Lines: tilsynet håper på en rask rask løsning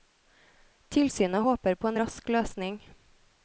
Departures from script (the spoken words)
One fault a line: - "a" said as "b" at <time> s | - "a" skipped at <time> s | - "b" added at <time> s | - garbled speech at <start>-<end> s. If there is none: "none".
- "rask" skipped at 2.3 s